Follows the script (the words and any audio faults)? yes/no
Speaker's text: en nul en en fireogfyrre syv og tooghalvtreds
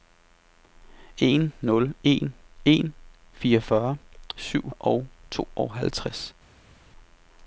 yes